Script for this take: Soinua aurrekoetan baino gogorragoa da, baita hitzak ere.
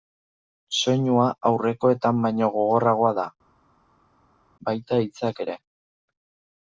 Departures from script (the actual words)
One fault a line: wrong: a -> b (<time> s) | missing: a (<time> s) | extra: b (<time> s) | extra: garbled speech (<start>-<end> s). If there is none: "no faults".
no faults